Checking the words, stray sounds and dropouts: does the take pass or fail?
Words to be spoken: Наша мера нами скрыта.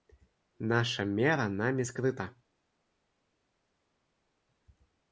pass